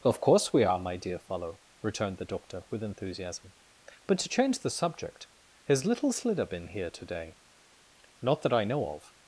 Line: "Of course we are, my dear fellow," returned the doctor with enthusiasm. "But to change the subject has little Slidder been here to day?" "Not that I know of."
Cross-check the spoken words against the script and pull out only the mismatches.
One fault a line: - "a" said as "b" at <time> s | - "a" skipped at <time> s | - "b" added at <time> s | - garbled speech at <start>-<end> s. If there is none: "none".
none